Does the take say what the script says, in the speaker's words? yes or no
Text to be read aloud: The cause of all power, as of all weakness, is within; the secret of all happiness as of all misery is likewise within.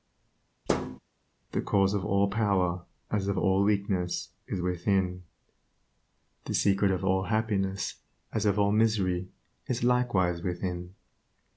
yes